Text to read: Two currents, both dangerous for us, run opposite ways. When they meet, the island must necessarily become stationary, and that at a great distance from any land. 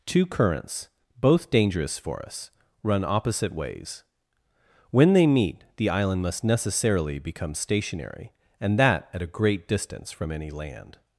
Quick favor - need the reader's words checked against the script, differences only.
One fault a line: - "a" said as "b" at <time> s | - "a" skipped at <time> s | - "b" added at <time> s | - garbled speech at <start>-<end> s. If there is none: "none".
none